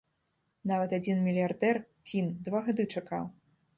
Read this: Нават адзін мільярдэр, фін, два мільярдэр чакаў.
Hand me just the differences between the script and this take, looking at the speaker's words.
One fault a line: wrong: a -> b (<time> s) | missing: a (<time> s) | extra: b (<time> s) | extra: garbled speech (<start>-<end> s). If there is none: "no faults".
wrong: мільярдэр -> гады (2.7 s)